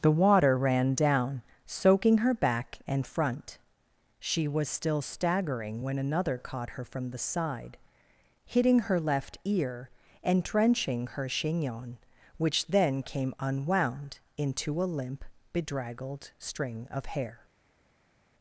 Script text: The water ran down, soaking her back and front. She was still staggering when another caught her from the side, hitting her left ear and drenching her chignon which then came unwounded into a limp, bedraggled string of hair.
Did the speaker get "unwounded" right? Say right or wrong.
wrong